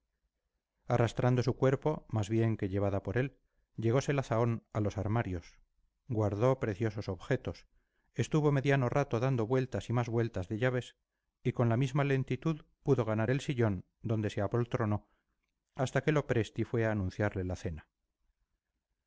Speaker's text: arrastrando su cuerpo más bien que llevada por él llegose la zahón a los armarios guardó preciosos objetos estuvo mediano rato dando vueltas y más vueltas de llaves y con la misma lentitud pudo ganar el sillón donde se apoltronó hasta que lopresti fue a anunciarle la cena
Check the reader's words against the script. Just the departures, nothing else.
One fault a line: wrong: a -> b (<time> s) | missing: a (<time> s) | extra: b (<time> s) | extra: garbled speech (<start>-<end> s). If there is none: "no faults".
no faults